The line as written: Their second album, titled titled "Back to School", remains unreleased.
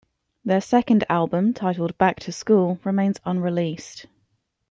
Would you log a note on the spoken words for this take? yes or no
yes